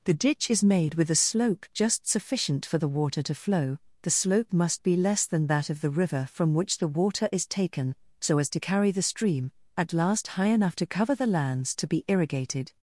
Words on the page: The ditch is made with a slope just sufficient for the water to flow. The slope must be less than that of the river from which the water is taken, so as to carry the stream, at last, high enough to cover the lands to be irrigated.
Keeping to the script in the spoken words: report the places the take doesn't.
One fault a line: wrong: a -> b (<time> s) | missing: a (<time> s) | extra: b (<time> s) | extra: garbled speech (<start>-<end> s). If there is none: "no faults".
no faults